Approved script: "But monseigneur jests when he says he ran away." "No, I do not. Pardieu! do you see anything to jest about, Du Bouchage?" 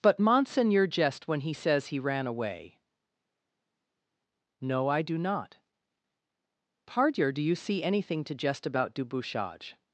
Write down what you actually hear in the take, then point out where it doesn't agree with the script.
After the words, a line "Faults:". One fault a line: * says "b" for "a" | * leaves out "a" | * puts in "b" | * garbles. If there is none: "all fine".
"But monseigneur jest when he says he ran away." "No, I do not. Pardieu! do you see anything to jest about, Du Bouchage?"
Faults:
* says "jest" for "jests"